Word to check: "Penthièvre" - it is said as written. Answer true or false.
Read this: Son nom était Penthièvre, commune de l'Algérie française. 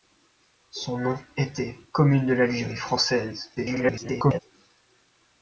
false